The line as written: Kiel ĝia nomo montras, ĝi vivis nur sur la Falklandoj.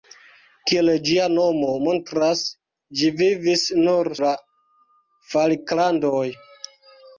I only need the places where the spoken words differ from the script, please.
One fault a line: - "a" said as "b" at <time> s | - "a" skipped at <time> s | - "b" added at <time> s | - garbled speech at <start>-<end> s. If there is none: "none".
- "sur" skipped at 4.1 s